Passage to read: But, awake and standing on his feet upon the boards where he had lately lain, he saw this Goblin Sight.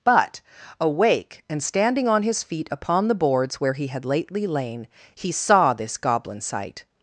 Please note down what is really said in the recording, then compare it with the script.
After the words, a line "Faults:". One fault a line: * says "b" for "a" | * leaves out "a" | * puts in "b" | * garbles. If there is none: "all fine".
But, awake and standing on his feet upon the boards where he had lately lain, he saw this Goblin Sight.
Faults:
all fine